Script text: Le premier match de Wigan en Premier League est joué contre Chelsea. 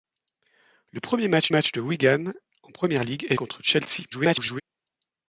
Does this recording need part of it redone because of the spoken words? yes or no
yes